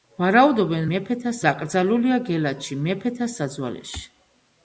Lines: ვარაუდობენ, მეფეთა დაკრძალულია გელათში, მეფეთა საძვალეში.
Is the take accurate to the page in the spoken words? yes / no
yes